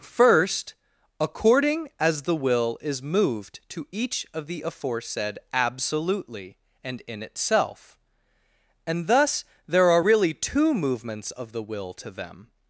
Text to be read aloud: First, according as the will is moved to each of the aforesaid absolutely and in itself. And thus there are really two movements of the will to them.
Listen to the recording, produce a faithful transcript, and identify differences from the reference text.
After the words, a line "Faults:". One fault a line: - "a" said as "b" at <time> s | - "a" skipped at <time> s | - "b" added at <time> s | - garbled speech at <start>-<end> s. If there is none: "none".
First, according as the will is moved to each of the aforesaid absolutely and in itself. And thus there are really two movements of the will to them.
Faults:
none